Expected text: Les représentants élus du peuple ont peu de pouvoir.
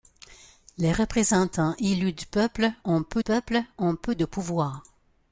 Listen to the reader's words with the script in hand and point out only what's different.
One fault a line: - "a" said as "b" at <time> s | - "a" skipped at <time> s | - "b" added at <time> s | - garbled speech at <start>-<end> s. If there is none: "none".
- "peuple ont peu" added at 3.2 s